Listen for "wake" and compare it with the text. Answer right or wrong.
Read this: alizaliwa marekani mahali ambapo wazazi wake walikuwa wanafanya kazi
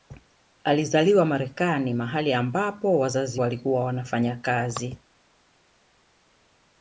wrong